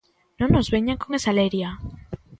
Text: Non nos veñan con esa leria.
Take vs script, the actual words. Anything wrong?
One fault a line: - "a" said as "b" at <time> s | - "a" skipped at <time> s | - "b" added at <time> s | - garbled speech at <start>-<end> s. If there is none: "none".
none